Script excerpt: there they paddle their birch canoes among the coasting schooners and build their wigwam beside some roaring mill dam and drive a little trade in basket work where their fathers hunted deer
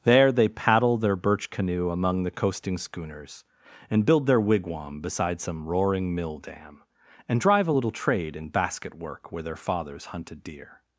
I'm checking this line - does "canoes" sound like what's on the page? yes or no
no